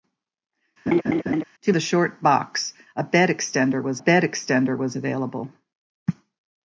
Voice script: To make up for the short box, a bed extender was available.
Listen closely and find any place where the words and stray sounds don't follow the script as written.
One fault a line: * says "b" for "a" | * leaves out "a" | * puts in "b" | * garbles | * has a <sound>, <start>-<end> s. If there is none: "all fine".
* has a laugh, 0.9-1.4 s
* leaves out "make up for"
* puts in "bed extender was"